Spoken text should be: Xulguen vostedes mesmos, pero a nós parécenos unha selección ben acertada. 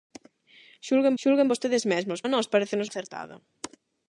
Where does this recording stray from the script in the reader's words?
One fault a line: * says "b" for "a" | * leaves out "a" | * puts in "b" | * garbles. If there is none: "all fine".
* puts in "xulguen"
* leaves out "pero"
* leaves out "unha selección ben"